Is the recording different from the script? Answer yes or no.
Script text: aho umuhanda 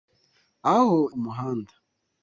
no